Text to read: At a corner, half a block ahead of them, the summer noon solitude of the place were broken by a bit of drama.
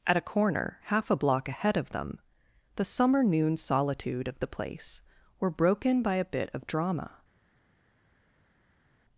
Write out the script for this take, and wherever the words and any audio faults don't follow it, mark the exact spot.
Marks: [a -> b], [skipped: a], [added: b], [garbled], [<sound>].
At a corner, half a block ahead of them, the summer noon solitude of the place were broken by a bit of drama.